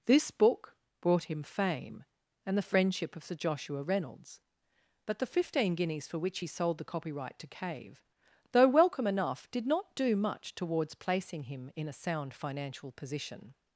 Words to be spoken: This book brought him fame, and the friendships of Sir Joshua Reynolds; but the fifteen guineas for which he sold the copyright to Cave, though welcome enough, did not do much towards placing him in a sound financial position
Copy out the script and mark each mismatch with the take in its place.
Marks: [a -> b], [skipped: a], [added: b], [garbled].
This book brought him fame, and the [friendships -> friendship] of Sir Joshua Reynolds; but the fifteen guineas for which he sold the copyright to Cave, though welcome enough, did not do much towards placing him in a sound financial position